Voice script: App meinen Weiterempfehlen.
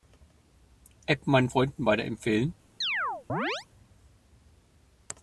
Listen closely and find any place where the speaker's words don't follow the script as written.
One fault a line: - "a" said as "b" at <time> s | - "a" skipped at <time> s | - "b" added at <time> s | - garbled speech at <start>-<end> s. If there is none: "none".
- "Freunden" added at 1.5 s